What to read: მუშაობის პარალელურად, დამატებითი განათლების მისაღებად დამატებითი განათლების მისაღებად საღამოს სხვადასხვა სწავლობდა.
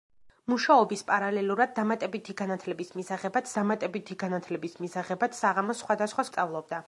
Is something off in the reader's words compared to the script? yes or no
no